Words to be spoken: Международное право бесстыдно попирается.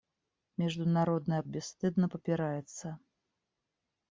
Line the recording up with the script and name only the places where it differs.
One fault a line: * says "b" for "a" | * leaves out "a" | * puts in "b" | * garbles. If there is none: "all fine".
* leaves out "право"